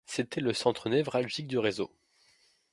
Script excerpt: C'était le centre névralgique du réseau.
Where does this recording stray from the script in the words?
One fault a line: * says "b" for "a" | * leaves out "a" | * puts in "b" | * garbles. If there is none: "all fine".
all fine